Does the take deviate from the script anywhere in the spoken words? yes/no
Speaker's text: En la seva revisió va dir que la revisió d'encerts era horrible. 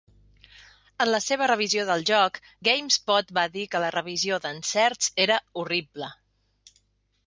yes